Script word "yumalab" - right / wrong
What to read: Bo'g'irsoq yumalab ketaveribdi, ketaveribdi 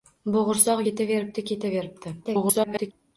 wrong